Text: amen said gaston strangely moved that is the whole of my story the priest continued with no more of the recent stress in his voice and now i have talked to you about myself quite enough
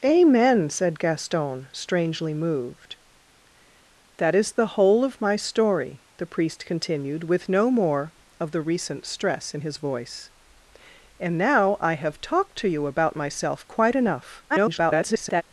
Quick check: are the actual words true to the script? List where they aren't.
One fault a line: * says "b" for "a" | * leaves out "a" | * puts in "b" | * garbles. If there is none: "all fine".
* garbles